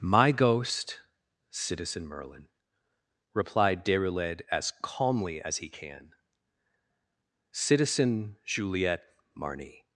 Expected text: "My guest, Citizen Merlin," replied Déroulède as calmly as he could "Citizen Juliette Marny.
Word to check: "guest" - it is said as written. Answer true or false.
false